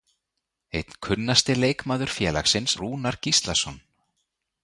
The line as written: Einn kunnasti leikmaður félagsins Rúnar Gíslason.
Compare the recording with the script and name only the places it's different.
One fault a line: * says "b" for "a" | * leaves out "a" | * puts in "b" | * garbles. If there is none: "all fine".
all fine